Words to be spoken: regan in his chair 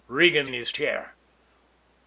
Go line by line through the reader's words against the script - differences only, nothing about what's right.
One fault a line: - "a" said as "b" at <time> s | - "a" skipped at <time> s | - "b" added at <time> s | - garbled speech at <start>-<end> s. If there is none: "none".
none